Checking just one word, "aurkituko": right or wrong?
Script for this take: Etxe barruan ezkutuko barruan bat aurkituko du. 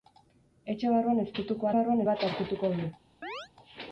right